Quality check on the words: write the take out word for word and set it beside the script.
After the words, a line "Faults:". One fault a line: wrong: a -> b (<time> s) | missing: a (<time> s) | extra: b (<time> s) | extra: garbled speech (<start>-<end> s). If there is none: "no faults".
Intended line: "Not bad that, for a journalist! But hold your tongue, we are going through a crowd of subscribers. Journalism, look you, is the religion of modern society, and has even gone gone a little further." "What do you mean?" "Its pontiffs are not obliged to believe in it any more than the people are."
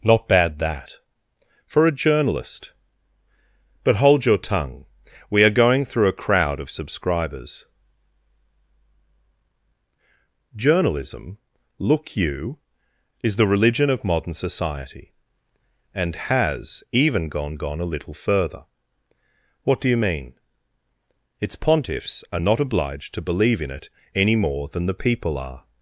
"Not bad that, for a journalist! But hold your tongue, we are going through a crowd of subscribers. Journalism, look you, is the religion of modern society, and has even gone gone a little further." "What do you mean?" "Its pontiffs are not obliged to believe in it any more than the people are."
Faults:
no faults